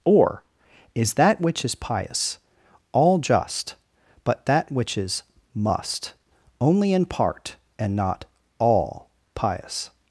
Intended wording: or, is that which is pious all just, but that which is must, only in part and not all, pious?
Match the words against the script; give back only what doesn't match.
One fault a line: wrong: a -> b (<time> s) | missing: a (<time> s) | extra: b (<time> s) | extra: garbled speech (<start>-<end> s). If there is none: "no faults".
no faults